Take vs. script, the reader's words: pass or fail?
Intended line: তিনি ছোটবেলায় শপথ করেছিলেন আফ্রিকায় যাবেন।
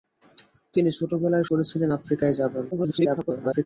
fail